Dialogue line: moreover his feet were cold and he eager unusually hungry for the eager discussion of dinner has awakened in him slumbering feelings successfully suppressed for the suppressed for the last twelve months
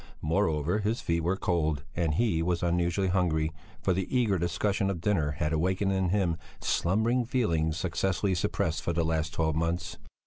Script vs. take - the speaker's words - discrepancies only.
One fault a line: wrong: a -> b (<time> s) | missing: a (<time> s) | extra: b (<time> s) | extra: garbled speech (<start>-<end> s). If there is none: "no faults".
wrong: eager -> was (2.4 s)
wrong: has -> had (5.3 s)
missing: suppressed for the (9.1 s)